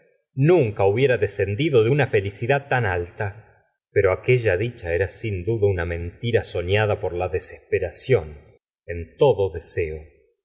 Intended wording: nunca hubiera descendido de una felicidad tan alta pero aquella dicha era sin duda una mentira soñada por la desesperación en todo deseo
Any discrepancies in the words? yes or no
no